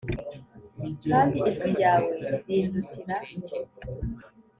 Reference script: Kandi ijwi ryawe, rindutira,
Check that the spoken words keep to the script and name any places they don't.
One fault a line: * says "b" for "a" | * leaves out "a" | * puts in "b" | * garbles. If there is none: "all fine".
all fine